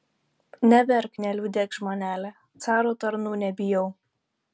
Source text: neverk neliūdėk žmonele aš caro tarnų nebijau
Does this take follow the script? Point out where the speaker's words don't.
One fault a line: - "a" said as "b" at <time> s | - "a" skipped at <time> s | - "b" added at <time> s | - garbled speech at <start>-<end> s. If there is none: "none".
- "aš" skipped at 2.3 s